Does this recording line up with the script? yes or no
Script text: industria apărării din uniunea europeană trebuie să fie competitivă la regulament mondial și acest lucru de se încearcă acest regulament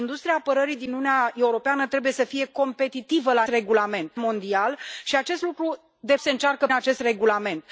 yes